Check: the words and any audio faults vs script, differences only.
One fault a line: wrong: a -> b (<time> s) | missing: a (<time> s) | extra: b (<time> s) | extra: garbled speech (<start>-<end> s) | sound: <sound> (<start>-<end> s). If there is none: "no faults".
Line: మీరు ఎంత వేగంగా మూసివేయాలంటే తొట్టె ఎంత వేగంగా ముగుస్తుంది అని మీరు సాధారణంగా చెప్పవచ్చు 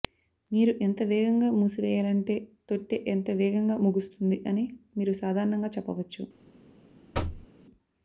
sound: thud (7.1-7.5 s)